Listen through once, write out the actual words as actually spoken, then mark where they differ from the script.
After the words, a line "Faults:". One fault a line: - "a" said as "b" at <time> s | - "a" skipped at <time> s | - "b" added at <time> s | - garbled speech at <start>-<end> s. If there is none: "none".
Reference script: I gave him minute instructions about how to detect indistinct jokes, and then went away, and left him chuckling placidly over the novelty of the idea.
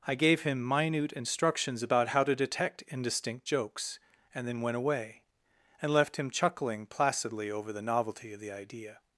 I gave him minute instructions about how to detect indistinct jokes, and then went away, and left him chuckling placidly over the novelty of the idea.
Faults:
none